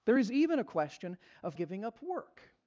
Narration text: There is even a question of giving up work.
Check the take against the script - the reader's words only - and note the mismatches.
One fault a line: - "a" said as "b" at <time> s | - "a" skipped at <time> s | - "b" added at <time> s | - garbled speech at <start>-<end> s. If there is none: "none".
none